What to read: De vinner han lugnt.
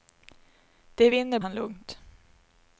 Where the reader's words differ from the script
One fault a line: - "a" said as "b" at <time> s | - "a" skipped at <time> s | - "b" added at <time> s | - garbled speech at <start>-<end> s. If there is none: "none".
none